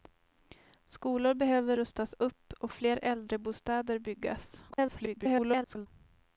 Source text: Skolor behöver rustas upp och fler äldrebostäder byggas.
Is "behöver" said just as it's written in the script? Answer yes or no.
yes